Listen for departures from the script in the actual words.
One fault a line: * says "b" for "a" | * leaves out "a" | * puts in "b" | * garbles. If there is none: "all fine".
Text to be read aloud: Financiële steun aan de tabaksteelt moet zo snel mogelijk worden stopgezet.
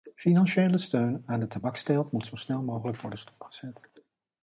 all fine